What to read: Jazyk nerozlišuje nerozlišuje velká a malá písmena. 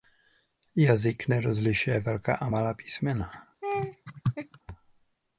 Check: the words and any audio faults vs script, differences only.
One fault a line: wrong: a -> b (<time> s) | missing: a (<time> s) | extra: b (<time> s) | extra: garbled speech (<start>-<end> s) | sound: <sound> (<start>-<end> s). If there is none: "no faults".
missing: nerozlišuje (2.0 s)
sound: laugh (3.6-4.6 s)